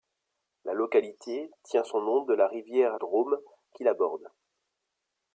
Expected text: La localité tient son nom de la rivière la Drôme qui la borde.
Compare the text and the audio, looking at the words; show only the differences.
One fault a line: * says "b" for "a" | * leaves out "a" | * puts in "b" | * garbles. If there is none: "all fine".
* leaves out "la"